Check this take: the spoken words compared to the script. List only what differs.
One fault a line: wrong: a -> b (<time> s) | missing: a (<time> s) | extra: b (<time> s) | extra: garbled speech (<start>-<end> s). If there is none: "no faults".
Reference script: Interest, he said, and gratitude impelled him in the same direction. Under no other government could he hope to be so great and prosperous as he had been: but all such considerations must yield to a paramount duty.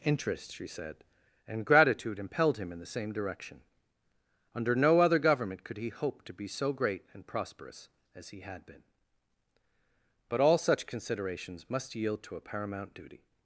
wrong: he -> she (0.5 s)